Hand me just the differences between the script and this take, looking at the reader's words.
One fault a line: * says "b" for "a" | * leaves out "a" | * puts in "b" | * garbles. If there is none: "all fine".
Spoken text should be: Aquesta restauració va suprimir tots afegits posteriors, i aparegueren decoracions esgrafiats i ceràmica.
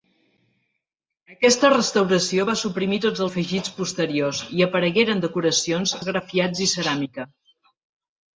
all fine